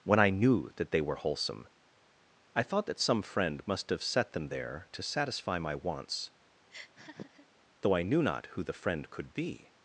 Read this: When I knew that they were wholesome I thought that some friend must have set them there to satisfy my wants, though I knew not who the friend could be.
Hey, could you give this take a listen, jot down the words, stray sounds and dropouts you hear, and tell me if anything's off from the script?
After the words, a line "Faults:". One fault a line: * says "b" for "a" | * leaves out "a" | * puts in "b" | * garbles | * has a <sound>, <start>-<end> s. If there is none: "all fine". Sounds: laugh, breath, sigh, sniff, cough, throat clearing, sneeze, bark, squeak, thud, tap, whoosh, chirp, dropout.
When I knew that they were wholesome I thought that some friend must have set them there to satisfy my wants, though I knew not who the friend could be.
Faults:
* has a laugh, 6.7-7.5 s